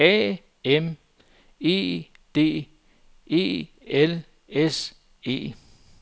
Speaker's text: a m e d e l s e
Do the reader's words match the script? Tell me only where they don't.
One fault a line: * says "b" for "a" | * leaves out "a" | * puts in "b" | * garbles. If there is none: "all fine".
all fine